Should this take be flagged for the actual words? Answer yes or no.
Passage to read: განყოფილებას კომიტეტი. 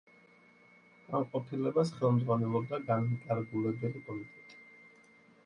yes